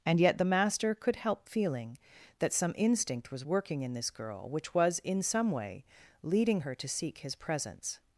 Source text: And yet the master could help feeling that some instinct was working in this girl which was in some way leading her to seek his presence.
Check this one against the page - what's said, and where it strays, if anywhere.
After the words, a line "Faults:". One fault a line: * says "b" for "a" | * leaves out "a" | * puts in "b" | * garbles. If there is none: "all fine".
And yet the master could help feeling that some instinct was working in this girl which was in some way leading her to seek his presence.
Faults:
all fine